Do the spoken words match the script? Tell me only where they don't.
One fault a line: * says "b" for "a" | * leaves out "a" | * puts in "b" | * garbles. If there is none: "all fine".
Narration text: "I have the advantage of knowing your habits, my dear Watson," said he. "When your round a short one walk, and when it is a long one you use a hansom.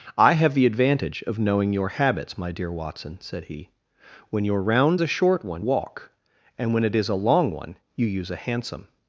all fine